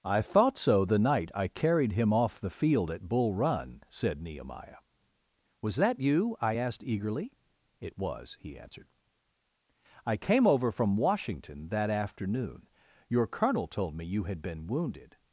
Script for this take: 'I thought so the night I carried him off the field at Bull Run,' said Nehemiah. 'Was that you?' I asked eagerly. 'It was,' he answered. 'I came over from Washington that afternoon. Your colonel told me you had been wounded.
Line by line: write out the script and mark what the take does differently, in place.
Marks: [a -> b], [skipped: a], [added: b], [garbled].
'I thought so the night I carried him off the field at Bull Run,' said Nehemiah. 'Was that you?' I asked eagerly. 'It was,' he answered. 'I came over from Washington that afternoon. Your colonel told me you had been wounded.